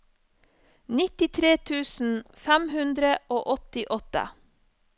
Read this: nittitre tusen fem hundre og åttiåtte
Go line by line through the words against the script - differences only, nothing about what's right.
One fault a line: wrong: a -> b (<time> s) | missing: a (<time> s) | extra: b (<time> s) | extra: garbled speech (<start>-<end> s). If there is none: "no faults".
no faults